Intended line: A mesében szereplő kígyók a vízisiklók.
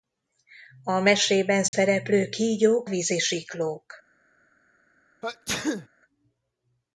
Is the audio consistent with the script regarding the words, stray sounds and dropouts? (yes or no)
no